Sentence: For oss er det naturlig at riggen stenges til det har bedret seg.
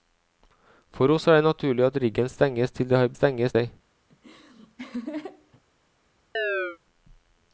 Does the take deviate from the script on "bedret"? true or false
true